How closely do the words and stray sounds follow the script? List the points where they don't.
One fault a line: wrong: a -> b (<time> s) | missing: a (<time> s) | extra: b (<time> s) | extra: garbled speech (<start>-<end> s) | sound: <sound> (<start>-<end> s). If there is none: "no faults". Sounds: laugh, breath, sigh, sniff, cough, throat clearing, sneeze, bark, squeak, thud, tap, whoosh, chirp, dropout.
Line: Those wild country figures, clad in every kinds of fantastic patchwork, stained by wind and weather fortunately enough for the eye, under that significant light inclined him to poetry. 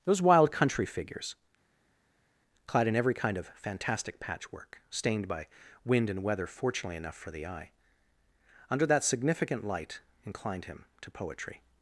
wrong: kinds -> kind (3.1 s)